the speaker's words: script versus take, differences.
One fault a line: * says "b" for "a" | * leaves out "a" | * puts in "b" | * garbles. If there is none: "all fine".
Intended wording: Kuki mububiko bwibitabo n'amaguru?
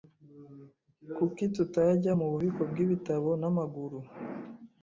* puts in "tutajya"